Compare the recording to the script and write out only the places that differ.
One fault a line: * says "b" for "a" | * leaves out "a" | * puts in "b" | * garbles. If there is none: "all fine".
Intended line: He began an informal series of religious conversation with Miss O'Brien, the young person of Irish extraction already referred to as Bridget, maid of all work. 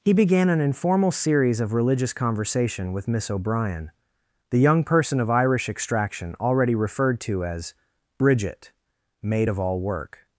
all fine